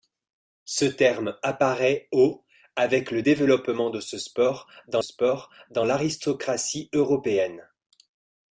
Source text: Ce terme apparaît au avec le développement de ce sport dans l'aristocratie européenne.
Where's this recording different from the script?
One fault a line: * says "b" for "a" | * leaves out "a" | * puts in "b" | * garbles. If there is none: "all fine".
* puts in "sport dans"